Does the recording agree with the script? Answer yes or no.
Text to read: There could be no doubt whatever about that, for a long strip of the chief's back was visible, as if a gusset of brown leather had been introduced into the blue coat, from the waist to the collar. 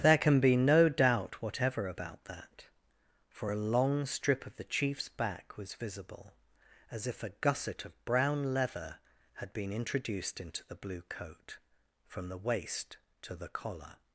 no